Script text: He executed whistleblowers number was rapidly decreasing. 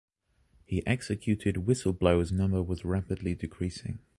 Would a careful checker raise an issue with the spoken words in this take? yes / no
no